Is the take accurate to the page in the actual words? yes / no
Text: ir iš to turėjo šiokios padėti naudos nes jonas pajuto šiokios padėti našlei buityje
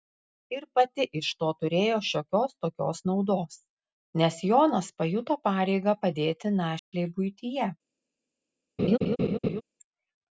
no